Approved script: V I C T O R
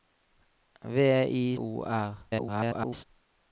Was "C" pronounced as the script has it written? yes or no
no